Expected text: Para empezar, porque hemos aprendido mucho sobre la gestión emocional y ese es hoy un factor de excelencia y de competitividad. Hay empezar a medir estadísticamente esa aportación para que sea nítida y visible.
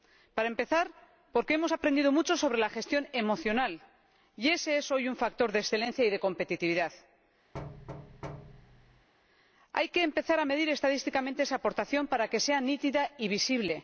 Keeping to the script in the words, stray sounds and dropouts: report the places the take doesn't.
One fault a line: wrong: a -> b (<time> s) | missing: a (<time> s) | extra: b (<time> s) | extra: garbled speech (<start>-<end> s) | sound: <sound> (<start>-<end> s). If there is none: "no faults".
sound: thud (7.5-9.1 s)
extra: que (9.9 s)